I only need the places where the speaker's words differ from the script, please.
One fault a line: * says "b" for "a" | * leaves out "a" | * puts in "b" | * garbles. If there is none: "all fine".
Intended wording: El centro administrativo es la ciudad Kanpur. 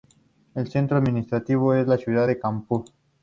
* puts in "de"